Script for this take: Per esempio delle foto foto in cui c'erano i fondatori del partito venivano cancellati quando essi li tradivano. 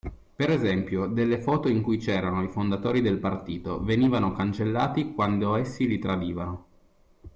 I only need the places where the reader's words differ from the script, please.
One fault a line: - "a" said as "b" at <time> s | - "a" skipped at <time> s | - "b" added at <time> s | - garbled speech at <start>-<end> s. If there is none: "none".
- "foto" skipped at 1.7 s